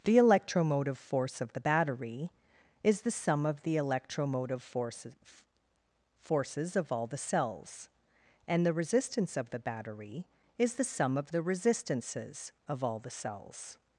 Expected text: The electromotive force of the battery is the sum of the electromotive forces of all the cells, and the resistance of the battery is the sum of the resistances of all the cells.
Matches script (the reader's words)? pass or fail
fail